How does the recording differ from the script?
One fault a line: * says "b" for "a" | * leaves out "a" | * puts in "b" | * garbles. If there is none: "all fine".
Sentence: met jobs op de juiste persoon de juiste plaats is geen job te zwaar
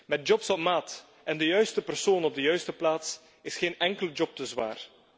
* puts in "maat en"
* puts in "op"
* puts in "enkele"